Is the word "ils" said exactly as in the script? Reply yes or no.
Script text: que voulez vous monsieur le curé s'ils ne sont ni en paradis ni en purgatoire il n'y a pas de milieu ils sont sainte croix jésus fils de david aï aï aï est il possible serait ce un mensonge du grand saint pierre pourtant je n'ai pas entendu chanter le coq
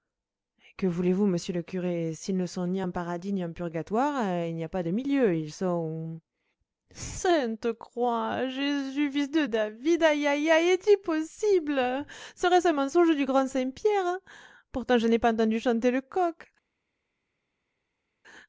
yes